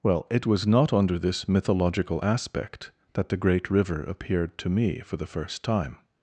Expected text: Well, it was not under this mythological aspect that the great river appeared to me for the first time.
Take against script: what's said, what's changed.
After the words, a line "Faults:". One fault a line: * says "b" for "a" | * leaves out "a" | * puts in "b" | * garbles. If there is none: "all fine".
Well, it was not under this mythological aspect that the great river appeared to me for the first time.
Faults:
all fine